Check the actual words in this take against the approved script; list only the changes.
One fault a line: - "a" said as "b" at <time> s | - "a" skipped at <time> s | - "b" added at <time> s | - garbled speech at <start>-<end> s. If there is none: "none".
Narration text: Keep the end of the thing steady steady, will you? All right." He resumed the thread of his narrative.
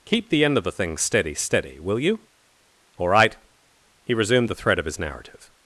none